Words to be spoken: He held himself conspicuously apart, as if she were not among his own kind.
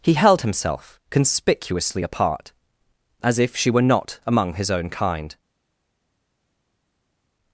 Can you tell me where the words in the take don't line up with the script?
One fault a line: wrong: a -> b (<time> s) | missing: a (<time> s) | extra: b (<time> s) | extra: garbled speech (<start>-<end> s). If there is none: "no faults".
no faults